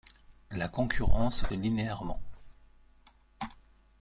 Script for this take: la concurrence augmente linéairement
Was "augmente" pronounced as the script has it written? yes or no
no